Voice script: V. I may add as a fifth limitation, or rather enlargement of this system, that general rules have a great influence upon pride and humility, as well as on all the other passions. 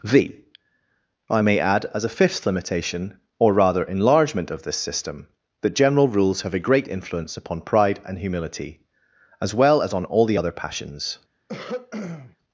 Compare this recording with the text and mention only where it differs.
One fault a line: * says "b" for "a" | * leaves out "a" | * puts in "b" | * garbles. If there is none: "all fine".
all fine